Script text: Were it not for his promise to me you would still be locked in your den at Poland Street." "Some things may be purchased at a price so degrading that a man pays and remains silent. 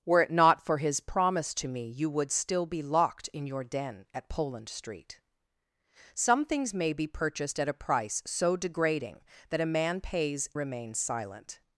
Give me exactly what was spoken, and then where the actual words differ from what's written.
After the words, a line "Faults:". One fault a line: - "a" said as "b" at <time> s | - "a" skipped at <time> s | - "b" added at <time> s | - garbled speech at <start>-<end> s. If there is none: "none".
Were it not for his promise to me you would still be locked in your den at Poland Street." "Some things may be purchased at a price so degrading that a man pays remains silent.
Faults:
- "and" skipped at 10.5 s